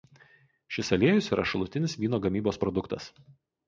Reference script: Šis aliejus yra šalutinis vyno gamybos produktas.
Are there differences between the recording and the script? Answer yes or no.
no